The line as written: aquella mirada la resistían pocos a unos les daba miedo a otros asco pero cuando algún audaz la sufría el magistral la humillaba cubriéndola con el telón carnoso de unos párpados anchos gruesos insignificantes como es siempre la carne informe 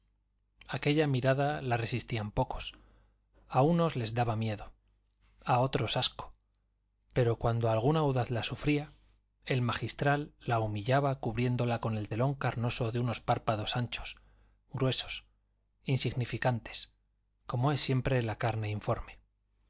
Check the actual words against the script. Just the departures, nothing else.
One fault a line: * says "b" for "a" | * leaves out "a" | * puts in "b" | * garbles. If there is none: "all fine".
all fine